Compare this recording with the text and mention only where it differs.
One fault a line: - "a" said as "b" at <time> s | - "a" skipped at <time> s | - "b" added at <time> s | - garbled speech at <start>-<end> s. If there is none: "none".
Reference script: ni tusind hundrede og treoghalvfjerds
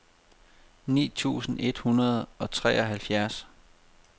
- "et" added at 1.6 s